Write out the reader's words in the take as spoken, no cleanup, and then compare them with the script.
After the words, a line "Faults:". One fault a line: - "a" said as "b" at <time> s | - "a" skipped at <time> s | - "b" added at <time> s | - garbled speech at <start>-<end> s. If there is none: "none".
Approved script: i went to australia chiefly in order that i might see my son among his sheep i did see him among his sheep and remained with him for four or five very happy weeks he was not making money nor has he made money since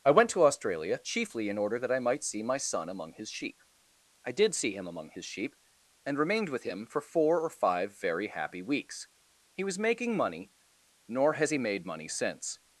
i went to australia chiefly in order that i might see my son among his sheep i did see him among his sheep and remained with him for four or five very happy weeks he was making money nor has he made money since
Faults:
- "not" skipped at 9.8 s